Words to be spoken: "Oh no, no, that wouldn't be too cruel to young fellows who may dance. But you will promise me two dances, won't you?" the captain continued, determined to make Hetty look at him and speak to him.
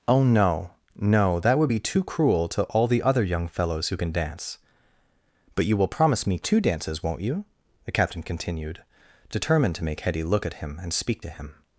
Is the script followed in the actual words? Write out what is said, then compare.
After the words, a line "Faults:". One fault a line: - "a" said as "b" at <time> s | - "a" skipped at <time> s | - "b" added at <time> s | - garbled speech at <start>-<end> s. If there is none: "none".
"Oh no, no, that would be too cruel to all the other young fellows who can dance. But you will promise me two dances, won't you?" the captain continued, determined to make Hetty look at him and speak to him.
Faults:
- "wouldn't" said as "would" at 1.6 s
- "all the other" added at 2.6 s
- "may" said as "can" at 4.0 s